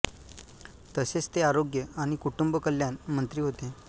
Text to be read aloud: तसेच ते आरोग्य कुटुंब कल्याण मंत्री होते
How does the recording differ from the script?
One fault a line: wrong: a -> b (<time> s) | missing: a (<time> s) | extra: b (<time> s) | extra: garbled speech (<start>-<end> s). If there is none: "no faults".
extra: आणि (2.0 s)